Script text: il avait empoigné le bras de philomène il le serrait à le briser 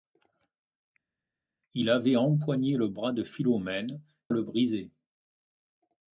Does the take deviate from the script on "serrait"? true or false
true